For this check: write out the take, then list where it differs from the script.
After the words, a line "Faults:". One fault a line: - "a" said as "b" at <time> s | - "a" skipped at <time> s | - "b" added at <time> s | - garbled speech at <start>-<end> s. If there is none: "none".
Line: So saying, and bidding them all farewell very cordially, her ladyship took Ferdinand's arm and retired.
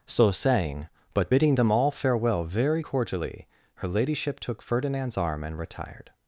So saying, but bidding them all farewell very cordially, her ladyship took Ferdinand's arm and retired.
Faults:
- "and" said as "but" at 1.1 s